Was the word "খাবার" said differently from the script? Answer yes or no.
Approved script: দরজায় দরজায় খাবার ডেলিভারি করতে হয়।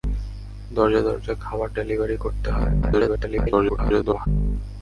no